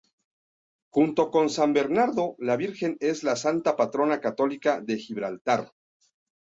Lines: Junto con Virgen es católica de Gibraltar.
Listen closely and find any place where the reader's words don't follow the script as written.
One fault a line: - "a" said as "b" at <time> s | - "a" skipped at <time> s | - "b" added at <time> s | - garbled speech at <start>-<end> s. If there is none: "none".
- "San Bernardo la" added at 1.5 s
- "la santa patrona" added at 3.2 s